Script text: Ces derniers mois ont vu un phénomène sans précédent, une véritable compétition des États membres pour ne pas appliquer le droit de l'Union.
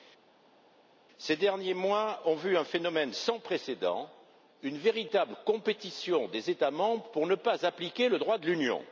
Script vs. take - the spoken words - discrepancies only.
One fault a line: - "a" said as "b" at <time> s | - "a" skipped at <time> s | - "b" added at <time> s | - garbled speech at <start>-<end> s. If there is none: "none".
none